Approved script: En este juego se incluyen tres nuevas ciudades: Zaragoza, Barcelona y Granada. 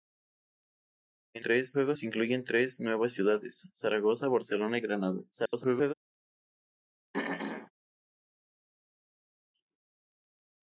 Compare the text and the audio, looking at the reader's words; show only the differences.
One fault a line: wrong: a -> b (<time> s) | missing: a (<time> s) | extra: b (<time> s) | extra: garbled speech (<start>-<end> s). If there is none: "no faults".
wrong: este -> tres (1.4 s)
extra: garbled speech (5.3-5.9 s)